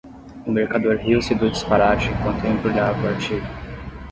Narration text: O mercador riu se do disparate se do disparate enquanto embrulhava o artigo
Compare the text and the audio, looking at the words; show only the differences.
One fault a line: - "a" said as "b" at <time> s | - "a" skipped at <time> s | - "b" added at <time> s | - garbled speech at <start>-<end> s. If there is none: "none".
- "se do disparate" skipped at 2.1 s